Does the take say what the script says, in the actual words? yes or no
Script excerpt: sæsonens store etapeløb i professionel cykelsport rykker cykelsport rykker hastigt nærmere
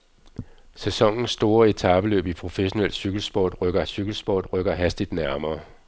yes